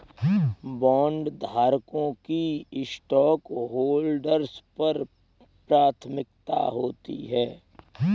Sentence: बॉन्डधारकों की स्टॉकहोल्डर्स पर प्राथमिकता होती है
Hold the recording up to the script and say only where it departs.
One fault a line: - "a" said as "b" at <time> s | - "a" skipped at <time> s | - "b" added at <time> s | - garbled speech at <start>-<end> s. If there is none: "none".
none